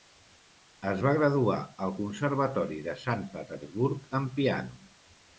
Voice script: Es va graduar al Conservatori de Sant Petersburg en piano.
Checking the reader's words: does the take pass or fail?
pass